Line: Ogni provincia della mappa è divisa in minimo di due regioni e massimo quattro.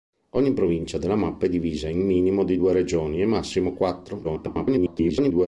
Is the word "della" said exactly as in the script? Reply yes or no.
yes